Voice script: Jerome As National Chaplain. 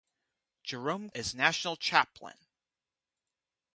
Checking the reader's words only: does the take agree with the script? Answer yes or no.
yes